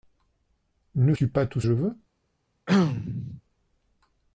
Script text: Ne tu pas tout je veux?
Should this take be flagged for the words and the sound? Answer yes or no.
yes